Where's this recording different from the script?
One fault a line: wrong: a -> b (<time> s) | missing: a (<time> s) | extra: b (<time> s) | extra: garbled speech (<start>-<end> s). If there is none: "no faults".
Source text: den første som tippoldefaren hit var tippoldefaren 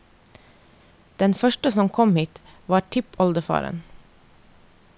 wrong: tippoldefaren -> kom (2.0 s)